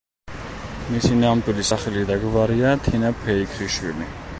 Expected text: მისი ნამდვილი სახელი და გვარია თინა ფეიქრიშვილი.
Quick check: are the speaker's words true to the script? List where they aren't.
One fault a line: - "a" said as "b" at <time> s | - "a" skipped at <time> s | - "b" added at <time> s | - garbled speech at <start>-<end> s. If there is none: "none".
none